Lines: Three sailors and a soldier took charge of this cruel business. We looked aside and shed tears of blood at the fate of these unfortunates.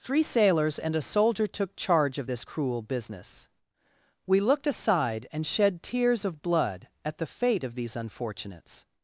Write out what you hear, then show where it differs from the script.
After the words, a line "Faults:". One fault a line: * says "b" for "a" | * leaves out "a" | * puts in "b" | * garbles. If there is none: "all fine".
Three sailors and a soldier took charge of this cruel business. We looked aside and shed tears of blood at the fate of these unfortunates.
Faults:
all fine